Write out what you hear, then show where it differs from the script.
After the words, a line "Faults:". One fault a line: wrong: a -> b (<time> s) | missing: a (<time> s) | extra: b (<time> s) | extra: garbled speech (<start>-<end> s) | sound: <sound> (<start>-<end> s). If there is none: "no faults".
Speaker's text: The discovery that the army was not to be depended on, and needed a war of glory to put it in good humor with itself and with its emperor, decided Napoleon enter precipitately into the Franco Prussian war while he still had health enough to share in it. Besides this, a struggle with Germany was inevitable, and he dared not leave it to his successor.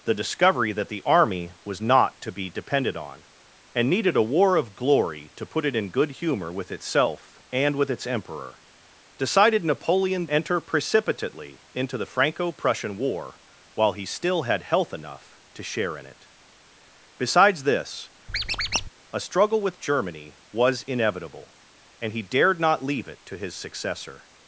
The discovery that the army was not to be depended on, and needed a war of glory to put it in good humor with itself and with its emperor, decided Napoleon enter precipitately into the Franco Prussian war while he still had health enough to share in it. Besides this, a struggle with Germany was inevitable, and he dared not leave it to his successor.
Faults:
sound: squeak (18.3-18.9 s)